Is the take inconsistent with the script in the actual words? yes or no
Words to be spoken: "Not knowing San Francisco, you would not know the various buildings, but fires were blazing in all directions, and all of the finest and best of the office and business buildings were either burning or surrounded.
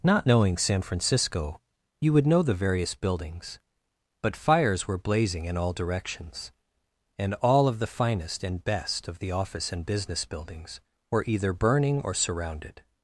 yes